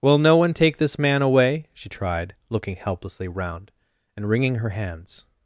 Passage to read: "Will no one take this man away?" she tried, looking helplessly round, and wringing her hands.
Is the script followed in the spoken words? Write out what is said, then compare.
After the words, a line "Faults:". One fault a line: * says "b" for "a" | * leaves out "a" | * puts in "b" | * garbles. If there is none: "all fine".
"Will no one take this man away?" she tried, looking helplessly round, and wringing her hands.
Faults:
all fine